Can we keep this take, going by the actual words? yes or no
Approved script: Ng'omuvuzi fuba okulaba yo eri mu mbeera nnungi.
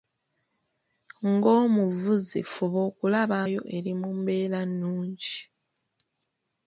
yes